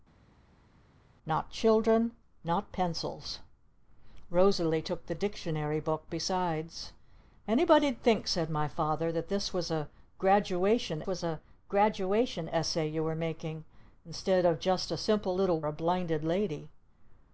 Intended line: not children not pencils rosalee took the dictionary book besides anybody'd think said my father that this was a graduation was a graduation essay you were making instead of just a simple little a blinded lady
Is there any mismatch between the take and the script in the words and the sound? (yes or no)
no